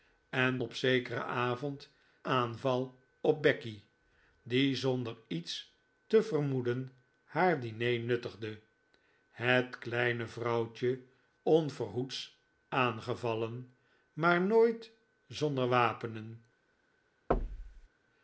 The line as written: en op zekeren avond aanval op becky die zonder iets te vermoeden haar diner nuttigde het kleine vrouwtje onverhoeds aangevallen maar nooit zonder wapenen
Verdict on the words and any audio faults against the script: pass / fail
fail